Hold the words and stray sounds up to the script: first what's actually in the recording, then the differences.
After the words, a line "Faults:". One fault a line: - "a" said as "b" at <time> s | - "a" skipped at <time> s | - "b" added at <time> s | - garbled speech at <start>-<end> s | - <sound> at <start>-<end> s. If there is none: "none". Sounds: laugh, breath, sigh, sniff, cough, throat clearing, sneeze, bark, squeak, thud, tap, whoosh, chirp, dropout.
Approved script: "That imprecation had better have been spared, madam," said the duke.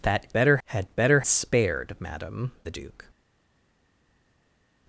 "That better had better spared, madam," the duke.
Faults:
- "imprecation" said as "better" at 0.3 s
- "have been" skipped at 1.2 s
- "said" skipped at 2.5 s